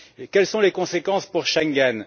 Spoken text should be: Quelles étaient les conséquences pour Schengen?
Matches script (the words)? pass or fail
fail